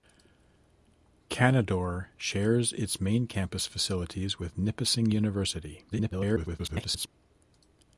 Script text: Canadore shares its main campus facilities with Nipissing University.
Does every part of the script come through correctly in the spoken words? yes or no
no